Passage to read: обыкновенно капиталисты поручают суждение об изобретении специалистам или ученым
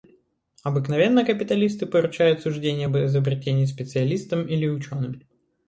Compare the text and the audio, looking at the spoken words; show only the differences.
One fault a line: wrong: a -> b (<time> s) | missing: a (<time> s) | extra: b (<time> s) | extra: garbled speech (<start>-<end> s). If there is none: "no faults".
no faults